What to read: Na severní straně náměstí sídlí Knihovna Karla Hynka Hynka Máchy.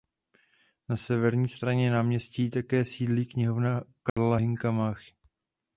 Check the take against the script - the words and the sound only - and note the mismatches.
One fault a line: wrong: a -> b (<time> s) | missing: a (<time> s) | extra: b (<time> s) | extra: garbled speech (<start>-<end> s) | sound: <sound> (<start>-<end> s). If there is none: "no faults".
extra: také (2.5 s)
sound: dropout (4.1-4.2 s)
missing: Hynka (4.7 s)